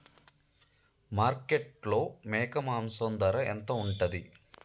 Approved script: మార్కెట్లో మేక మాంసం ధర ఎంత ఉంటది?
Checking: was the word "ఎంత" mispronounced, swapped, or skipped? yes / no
no